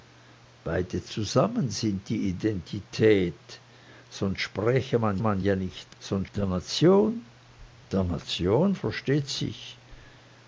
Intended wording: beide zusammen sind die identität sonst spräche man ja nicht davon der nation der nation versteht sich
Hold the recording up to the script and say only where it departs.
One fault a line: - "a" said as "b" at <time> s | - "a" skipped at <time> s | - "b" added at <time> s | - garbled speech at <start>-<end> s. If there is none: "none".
- "man" added at 5.2 s
- "davon" said as "sonst" at 6.0 s